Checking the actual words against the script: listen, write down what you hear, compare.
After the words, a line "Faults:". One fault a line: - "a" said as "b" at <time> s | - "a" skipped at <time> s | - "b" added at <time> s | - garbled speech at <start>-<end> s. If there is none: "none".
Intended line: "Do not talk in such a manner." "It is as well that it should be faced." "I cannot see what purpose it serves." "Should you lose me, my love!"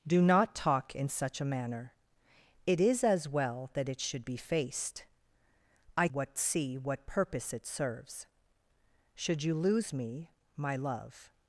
"Do not talk in such a manner." "It is as well that it should be faced." "I what see what purpose it serves." "Should you lose me, my love!"
Faults:
- "cannot" said as "what" at 6.1 s